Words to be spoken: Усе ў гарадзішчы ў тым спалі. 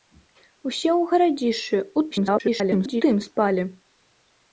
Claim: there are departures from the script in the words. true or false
true